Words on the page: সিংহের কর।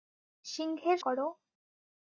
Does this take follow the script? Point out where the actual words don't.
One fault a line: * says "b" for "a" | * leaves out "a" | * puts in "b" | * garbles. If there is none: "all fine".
all fine